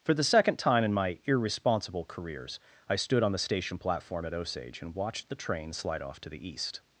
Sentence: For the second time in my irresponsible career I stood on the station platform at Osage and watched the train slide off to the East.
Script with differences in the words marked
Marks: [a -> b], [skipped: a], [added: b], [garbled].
For the second time in my irresponsible [career -> careers] I stood on the station platform at Osage and watched the train slide off to the East.